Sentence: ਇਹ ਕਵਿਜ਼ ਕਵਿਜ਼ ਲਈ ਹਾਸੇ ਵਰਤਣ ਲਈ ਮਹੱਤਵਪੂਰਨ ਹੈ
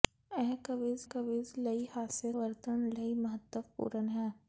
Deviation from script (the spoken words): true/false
false